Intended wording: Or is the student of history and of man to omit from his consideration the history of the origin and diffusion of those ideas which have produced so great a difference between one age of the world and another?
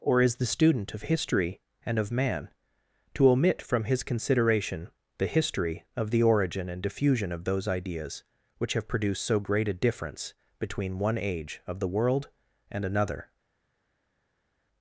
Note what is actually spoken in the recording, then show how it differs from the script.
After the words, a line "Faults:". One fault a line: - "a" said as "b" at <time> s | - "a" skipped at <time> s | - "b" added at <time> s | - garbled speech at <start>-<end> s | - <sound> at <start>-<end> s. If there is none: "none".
Or is the student of history and of man to omit from his consideration the history of the origin and diffusion of those ideas which have produced so great a difference between one age of the world and another?
Faults:
none